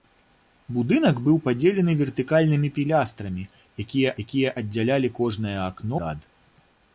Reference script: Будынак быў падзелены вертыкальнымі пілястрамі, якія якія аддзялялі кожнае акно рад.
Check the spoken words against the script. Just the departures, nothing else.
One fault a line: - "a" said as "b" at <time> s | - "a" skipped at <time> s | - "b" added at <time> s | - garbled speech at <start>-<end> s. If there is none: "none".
none